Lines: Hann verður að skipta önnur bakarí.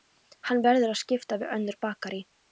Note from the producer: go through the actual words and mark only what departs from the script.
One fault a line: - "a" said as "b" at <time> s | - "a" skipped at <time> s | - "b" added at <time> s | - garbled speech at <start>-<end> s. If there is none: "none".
- "við" added at 1.4 s